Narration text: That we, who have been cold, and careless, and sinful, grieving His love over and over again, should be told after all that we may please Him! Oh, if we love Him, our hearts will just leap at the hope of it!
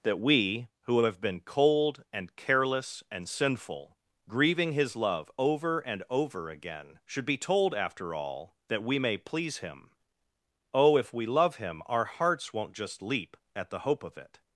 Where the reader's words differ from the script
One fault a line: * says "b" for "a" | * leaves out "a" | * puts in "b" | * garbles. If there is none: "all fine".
* says "won't" for "will"